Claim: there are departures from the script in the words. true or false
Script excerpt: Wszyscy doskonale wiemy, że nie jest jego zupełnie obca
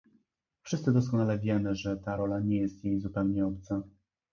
true